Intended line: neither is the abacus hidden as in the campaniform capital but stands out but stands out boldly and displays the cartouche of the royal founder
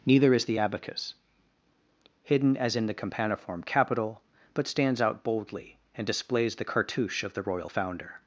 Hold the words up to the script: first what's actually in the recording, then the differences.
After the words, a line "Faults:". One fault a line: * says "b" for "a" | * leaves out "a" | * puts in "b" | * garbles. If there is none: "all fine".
neither is the abacus hidden as in the campaniform capital but stands out boldly and displays the cartouche of the royal founder
Faults:
* leaves out "but stands out"